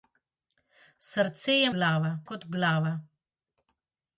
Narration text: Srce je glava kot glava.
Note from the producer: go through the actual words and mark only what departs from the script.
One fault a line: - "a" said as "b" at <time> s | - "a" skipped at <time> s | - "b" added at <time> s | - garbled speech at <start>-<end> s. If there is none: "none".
none